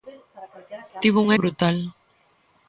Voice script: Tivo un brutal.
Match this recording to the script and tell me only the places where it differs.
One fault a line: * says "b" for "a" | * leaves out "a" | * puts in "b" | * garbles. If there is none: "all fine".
all fine